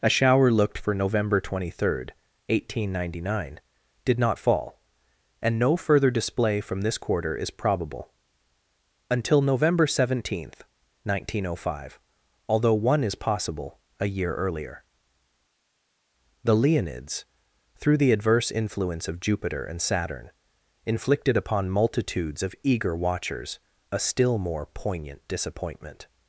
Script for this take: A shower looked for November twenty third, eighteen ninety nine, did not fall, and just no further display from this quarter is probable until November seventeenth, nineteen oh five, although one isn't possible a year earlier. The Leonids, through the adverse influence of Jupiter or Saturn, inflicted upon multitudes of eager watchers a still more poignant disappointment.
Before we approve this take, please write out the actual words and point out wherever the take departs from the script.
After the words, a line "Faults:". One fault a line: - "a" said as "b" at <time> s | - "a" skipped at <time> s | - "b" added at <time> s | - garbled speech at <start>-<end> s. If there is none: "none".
A shower looked for November twenty third, eighteen ninety nine, did not fall, and no further display from this quarter is probable until November seventeenth, nineteen oh five, although one is possible a year earlier. The Leonids, through the adverse influence of Jupiter and Saturn, inflicted upon multitudes of eager watchers a still more poignant disappointment.
Faults:
- "just" skipped at 5.6 s
- "isn't" said as "is" at 13.0 s
- "or" said as "and" at 19.6 s